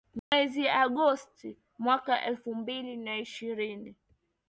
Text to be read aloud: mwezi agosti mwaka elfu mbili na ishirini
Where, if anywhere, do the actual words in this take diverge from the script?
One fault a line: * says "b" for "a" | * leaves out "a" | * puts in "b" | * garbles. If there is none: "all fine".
all fine